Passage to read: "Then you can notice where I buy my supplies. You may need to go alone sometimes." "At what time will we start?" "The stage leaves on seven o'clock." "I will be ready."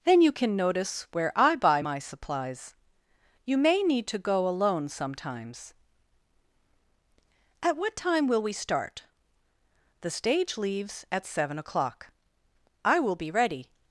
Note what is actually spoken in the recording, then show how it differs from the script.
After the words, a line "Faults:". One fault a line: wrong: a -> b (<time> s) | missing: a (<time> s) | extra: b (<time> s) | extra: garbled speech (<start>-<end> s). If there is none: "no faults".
"Then you can notice where I buy my supplies. You may need to go alone sometimes." "At what time will we start?" "The stage leaves at seven o'clock." "I will be ready."
Faults:
wrong: on -> at (11.1 s)